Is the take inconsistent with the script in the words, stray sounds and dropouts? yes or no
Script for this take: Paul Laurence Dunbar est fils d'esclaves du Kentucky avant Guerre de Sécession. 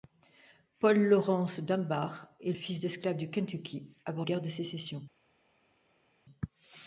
no